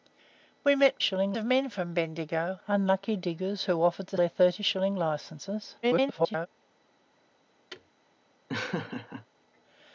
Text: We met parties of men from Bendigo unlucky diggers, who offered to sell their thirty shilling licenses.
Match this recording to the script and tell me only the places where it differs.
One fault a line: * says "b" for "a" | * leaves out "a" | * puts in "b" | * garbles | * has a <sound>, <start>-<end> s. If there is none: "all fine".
* says "shilling" for "parties"
* leaves out "sell"
* garbles
* has a thud, 7.7-7.9 s
* has a laugh, 8.5-9.3 s